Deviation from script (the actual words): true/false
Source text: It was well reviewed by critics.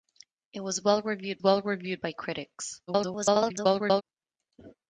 true